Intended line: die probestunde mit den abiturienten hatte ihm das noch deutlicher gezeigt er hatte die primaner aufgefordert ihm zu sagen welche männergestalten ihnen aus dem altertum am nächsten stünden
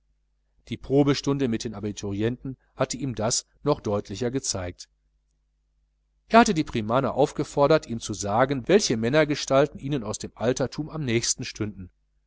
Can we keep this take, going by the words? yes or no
yes